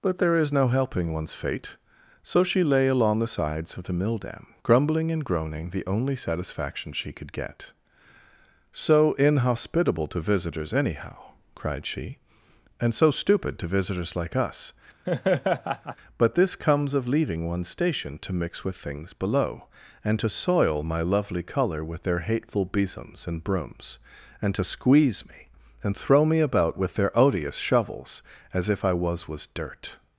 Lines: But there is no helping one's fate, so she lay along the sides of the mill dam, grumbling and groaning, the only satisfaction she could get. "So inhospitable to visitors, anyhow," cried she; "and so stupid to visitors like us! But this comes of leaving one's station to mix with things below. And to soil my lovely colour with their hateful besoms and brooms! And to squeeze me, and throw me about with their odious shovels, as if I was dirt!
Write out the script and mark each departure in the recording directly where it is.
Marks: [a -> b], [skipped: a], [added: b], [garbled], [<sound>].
But there is no helping one's fate, so she lay along the sides of the mill dam, grumbling and groaning, the only satisfaction she could get. "So inhospitable to visitors, anyhow," cried she; "and so stupid to visitors like us! [laugh] But this comes of leaving one's station to mix with things below. And to soil my lovely colour with their hateful besoms and brooms! And to squeeze me, and throw me about with their odious shovels, as if I was [added: was] dirt!